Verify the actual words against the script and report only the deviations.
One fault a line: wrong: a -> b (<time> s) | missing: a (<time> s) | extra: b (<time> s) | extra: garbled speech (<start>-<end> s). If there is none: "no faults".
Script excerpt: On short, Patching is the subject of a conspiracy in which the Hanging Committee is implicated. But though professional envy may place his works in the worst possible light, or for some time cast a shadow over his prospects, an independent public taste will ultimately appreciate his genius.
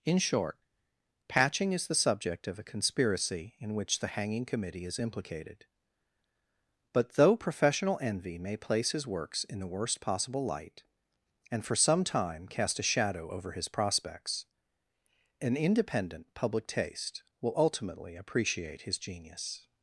wrong: On -> In (0.0 s)
wrong: or -> and (11.5 s)